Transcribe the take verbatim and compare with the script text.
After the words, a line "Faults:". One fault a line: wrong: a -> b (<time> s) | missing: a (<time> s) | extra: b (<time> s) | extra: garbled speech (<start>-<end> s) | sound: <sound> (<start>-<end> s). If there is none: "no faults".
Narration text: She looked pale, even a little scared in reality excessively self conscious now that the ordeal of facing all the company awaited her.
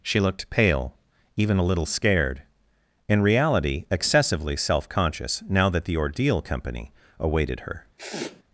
She looked pale, even a little scared in reality excessively self conscious now that the ordeal company awaited her.
Faults:
missing: of facing all the (6.4 s)
sound: sniff (8.0-8.4 s)